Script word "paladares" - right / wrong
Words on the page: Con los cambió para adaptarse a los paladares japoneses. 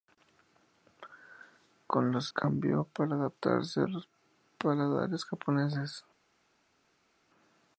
right